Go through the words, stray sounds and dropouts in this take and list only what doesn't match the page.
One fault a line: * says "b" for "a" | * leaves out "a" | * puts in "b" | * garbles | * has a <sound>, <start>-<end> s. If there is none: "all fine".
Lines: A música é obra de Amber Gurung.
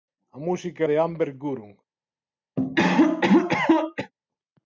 * leaves out "obra"
* has a cough, 2.6-4.1 s